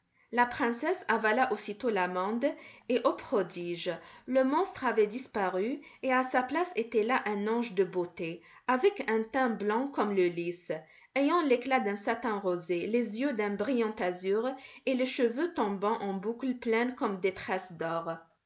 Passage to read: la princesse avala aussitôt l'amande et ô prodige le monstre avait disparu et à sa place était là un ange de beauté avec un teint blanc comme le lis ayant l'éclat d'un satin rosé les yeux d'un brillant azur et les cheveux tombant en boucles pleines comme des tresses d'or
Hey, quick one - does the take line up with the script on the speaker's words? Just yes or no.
yes